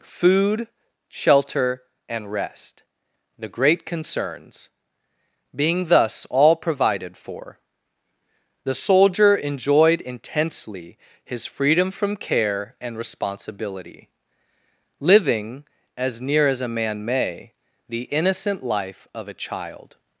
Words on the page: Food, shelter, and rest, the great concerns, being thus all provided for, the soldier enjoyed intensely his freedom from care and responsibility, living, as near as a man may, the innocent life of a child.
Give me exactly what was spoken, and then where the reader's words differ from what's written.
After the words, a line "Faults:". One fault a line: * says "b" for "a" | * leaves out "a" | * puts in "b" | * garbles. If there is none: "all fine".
Food, shelter, and rest, the great concerns, being thus all provided for, the soldier enjoyed intensely his freedom from care and responsibility, living, as near as a man may, the innocent life of a child.
Faults:
all fine